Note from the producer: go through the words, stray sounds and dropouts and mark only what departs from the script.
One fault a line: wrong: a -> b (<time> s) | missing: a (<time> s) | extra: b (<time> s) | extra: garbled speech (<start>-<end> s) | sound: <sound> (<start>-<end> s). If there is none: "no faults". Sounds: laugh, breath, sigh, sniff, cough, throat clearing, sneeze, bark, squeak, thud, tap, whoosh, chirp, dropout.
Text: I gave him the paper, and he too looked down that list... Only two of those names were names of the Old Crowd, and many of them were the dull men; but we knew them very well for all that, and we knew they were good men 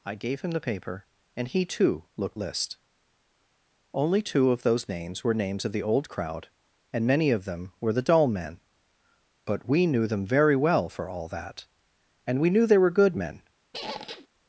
missing: down that (2.4 s)
sound: squeak (13.7-14.3 s)